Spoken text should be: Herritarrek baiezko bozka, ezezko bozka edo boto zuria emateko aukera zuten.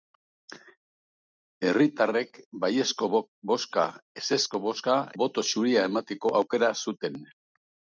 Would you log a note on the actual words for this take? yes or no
yes